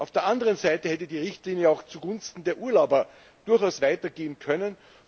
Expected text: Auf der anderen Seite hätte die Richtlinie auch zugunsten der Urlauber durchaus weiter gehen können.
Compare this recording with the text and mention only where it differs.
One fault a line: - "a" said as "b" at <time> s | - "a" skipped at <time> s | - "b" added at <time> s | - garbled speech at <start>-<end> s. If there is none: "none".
none